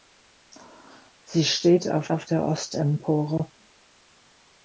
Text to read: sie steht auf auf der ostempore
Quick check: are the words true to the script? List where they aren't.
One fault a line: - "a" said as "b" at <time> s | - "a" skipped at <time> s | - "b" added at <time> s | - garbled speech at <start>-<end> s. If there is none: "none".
none